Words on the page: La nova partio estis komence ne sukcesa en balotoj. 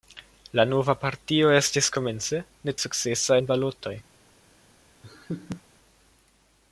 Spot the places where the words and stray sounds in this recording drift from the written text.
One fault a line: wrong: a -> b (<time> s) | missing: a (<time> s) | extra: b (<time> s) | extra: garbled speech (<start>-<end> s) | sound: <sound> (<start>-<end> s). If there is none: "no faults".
sound: laugh (5.0-5.6 s)